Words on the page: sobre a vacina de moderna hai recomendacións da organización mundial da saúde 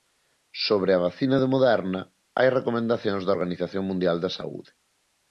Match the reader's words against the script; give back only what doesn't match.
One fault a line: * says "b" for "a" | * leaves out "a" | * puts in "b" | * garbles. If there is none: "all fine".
all fine